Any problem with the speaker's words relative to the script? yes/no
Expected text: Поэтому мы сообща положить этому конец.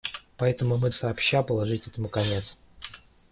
no